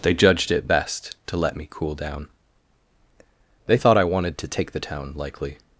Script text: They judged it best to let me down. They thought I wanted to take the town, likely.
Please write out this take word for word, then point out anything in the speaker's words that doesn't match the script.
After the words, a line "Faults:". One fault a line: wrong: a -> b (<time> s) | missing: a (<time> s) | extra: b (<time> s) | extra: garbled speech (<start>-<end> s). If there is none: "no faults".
They judged it best to let me cool down. They thought I wanted to take the town, likely.
Faults:
extra: cool (1.7 s)